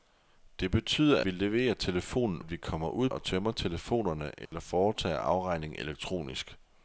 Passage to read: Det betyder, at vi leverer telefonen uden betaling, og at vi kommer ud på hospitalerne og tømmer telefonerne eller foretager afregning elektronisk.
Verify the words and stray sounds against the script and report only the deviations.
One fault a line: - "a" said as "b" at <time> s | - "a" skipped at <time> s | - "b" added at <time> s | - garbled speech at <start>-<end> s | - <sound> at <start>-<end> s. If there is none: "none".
- "at" skipped at 1.2 s
- "uden betaling og" skipped at 2.4 s
- "på hospitalerne" skipped at 3.1 s
- dropout at 4.5-4.5 s